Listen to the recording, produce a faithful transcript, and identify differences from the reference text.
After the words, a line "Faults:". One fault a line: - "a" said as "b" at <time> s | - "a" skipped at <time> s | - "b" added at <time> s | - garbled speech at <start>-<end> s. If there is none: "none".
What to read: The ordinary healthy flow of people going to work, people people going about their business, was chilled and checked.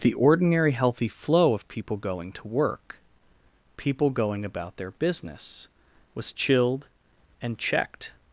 The ordinary healthy flow of people going to work, people going about their business, was chilled and checked.
Faults:
- "people" skipped at 4.1 s